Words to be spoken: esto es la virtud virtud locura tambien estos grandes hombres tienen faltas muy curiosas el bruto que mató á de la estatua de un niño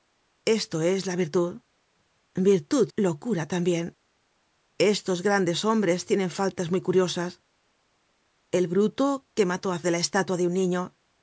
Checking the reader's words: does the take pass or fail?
pass